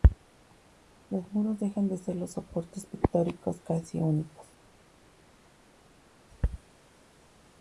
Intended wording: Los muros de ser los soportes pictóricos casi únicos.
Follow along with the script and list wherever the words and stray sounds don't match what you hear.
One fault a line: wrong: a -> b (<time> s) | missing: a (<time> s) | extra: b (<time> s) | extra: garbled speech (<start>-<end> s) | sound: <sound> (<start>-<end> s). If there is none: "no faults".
extra: dejan (1.6 s)